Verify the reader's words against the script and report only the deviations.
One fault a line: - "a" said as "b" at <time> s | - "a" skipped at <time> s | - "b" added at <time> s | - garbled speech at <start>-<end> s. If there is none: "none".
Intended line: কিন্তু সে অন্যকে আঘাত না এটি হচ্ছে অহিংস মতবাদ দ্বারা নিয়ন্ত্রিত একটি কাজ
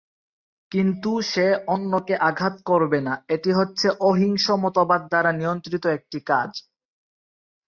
- "করবে" added at 2.6 s